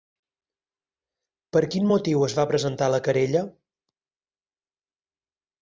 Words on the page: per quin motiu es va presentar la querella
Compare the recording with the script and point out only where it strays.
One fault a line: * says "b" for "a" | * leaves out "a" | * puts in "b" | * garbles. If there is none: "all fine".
all fine